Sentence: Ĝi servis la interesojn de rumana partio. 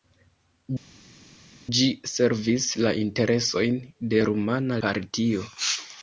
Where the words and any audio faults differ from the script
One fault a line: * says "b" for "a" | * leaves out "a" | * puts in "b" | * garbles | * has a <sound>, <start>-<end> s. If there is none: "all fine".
all fine